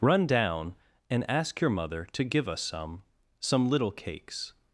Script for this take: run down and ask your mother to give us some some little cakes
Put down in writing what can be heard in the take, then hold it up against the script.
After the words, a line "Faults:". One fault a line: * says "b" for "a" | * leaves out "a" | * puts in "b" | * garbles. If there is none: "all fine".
run down and ask your mother to give us some some little cakes
Faults:
all fine